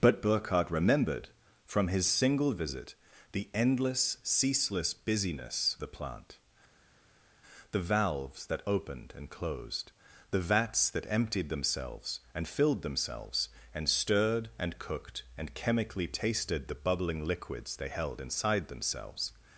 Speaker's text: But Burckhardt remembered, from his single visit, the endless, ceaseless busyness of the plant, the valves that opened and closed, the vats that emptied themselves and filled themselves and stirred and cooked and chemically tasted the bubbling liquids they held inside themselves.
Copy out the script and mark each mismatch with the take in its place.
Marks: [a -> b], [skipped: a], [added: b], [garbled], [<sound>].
But Burckhardt remembered, from his single visit, the endless, ceaseless busyness [skipped: of] the plant, the valves that opened and closed, the vats that emptied themselves and filled themselves and stirred and cooked and chemically tasted the bubbling liquids they held inside themselves.